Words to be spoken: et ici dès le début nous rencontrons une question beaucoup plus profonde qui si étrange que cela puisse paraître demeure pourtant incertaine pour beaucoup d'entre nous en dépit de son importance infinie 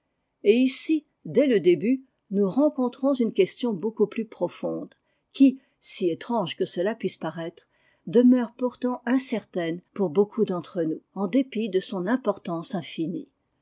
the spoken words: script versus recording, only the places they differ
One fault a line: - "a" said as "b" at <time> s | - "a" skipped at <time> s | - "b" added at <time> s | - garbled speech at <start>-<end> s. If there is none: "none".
none